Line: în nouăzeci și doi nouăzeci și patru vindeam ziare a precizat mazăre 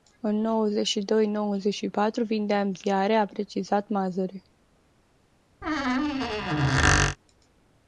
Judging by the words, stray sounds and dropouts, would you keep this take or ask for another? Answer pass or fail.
fail